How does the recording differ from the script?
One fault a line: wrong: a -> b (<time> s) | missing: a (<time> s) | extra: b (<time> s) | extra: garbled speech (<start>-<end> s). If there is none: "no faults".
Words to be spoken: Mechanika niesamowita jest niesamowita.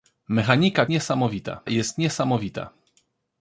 no faults